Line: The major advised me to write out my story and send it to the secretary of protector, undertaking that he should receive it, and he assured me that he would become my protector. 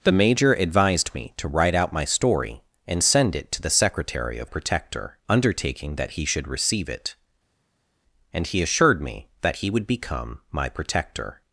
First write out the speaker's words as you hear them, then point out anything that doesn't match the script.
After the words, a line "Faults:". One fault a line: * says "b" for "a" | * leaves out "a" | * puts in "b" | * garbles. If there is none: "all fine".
The major advised me to write out my story and send it to the secretary of protector, undertaking that he should receive it, and he assured me that he would become my protector.
Faults:
all fine